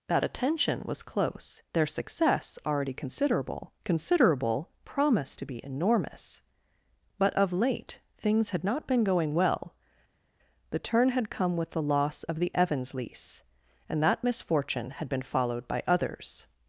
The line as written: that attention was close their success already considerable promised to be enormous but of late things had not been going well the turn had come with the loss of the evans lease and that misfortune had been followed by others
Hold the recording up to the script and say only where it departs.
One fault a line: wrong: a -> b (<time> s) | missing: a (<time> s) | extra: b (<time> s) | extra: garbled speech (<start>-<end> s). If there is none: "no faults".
extra: considerable (3.8 s)